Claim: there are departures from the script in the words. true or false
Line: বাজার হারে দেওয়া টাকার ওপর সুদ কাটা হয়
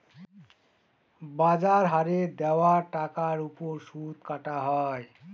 false